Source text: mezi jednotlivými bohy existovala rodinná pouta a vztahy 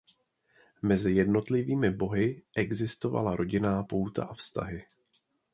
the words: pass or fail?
pass